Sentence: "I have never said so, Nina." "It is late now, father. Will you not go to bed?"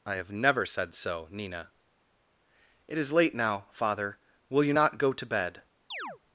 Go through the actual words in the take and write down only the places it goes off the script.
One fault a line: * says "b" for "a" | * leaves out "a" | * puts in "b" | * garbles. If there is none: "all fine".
all fine